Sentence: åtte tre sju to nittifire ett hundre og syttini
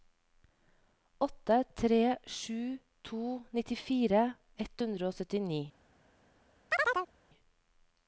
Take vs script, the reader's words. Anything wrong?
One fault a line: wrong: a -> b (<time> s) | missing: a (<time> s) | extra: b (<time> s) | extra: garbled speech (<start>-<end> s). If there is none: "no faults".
no faults